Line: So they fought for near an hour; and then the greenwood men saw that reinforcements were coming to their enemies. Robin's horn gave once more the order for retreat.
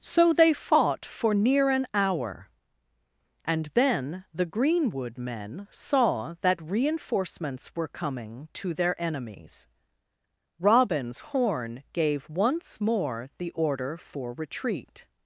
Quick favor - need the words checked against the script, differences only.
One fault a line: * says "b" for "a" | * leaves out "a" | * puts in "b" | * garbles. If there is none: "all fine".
all fine